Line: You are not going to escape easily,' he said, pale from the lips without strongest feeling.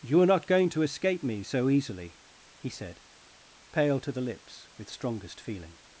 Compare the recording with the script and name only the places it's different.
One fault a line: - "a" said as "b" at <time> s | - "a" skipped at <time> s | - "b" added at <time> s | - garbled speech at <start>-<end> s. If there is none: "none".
- "me so" added at 1.2 s
- "from" said as "to" at 4.0 s
- "without" said as "with" at 4.8 s